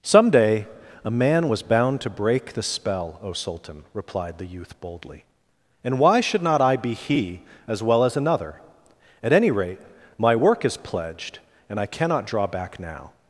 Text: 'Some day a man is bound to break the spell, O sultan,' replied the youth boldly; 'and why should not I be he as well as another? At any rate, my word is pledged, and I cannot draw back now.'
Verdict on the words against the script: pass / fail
fail